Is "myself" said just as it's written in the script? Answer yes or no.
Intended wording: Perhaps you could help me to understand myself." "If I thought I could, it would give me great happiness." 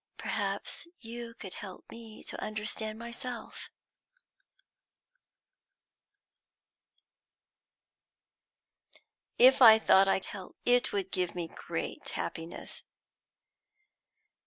yes